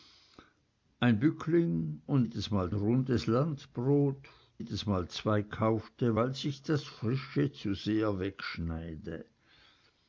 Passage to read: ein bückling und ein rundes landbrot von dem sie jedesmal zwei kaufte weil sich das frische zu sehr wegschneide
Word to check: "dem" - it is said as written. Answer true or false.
false